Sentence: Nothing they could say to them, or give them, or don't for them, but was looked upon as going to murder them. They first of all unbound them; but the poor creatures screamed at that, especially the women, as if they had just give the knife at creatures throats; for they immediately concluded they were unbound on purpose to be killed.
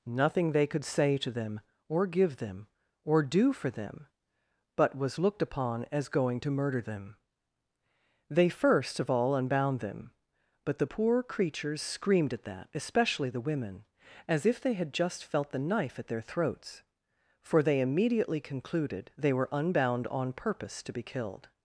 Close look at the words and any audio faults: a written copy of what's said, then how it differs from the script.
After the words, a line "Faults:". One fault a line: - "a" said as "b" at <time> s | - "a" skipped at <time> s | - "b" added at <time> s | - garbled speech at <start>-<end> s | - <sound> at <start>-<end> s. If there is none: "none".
Nothing they could say to them, or give them, or do for them, but was looked upon as going to murder them. They first of all unbound them; but the poor creatures screamed at that, especially the women, as if they had just felt the knife at their throats; for they immediately concluded they were unbound on purpose to be killed.
Faults:
- "don't" said as "do" at 3.2 s
- "give" said as "felt" at 15.2 s
- "creatures" said as "their" at 16.1 s